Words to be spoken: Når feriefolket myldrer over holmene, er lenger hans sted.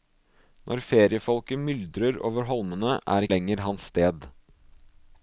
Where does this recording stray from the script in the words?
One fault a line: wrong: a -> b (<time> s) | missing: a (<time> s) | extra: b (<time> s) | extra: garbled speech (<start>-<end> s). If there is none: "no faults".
no faults